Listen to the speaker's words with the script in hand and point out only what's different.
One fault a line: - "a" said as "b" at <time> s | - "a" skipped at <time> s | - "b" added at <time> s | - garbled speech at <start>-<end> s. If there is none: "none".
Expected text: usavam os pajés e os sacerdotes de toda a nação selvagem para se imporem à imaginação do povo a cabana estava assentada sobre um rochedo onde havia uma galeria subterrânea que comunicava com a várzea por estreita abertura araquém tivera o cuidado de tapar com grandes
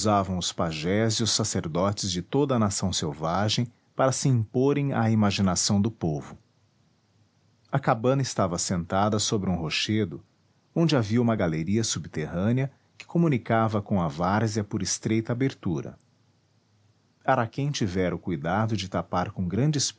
none